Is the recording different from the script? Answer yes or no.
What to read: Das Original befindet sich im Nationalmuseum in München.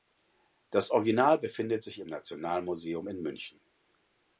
no